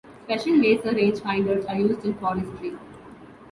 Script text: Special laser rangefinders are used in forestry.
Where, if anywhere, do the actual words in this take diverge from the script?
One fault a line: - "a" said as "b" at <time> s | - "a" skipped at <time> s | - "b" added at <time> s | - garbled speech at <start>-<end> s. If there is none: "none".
none